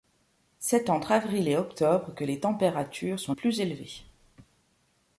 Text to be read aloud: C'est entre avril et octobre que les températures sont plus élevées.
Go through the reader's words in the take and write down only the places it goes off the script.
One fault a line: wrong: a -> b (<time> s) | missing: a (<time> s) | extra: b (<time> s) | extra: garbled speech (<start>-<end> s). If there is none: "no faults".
no faults